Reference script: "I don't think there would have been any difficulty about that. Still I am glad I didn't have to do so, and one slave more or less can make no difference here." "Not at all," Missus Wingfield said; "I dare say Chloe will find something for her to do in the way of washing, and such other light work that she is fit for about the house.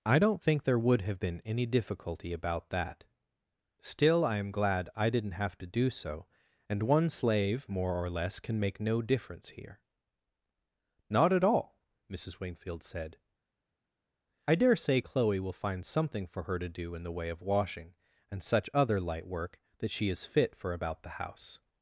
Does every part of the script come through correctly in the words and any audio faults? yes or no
yes